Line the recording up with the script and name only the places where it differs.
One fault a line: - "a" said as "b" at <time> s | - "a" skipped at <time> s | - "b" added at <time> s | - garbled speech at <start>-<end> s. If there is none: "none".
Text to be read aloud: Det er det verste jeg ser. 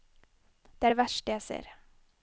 none